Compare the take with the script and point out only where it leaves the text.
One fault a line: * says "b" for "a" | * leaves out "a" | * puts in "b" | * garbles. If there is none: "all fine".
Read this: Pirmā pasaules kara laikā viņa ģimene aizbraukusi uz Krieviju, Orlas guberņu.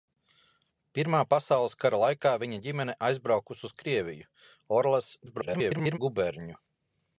* garbles